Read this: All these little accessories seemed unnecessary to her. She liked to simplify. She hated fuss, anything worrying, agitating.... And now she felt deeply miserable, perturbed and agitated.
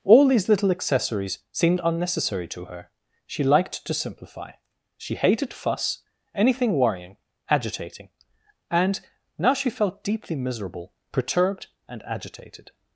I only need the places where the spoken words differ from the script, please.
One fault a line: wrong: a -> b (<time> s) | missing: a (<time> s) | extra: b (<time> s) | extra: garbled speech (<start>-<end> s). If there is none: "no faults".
no faults